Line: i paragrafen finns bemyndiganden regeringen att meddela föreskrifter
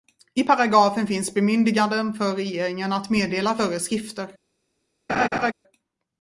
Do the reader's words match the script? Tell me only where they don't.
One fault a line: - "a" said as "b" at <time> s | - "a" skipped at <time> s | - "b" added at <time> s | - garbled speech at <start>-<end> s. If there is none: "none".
- "för" added at 2.1 s